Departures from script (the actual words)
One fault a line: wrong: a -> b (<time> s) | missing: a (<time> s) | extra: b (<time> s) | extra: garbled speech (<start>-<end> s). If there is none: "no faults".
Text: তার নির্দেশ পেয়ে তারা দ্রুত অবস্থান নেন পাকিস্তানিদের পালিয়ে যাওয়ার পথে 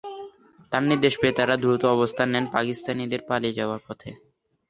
no faults